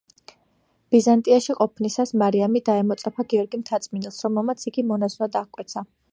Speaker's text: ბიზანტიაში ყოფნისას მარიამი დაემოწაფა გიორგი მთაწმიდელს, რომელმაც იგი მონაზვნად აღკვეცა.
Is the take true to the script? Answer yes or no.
yes